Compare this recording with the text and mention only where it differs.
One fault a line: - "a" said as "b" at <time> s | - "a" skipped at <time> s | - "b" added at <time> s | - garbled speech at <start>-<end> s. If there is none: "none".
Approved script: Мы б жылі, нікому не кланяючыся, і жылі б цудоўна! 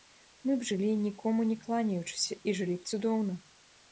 none